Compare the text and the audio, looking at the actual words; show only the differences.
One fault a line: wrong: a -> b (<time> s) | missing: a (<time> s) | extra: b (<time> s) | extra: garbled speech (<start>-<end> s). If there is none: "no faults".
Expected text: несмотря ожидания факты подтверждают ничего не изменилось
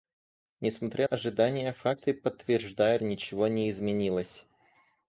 no faults